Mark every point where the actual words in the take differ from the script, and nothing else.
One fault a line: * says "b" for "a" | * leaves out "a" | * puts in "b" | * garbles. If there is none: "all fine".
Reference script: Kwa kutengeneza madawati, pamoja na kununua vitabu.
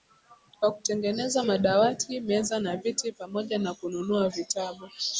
* puts in "meza na viti"